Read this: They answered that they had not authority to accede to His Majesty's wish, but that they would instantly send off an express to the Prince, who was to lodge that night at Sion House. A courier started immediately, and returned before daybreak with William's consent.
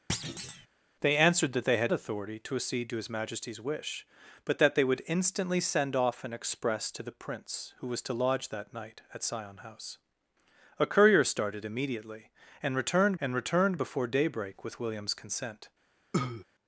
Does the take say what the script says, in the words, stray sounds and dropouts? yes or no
no